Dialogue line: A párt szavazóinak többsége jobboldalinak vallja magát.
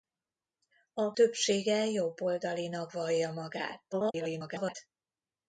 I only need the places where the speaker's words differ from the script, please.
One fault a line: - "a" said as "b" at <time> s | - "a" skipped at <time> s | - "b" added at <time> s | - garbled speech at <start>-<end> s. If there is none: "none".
- "párt szavazóinak" skipped at 1.1 s
- garbled speech at 3.9-4.8 s